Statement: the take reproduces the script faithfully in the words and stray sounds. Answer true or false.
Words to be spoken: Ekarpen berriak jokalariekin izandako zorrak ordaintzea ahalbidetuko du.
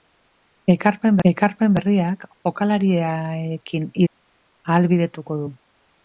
false